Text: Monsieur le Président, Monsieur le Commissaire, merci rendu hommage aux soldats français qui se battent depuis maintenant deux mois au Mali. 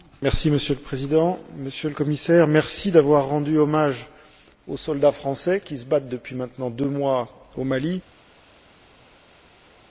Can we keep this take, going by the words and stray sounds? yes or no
no